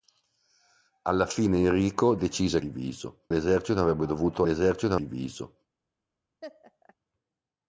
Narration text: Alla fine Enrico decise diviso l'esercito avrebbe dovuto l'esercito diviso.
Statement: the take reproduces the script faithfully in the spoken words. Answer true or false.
true